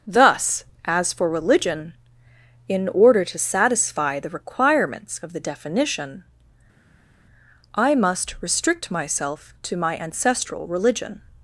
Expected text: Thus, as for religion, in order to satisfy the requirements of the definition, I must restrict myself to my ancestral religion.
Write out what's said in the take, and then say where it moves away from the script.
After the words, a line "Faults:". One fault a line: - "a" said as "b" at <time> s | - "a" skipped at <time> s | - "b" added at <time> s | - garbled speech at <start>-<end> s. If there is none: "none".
Thus, as for religion, in order to satisfy the requirements of the definition, I must restrict myself to my ancestral religion.
Faults:
none